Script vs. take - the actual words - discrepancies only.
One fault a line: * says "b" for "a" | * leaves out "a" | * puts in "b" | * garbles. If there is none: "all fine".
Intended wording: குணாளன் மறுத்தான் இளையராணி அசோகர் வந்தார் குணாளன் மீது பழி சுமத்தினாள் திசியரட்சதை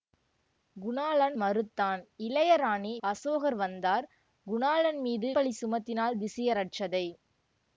all fine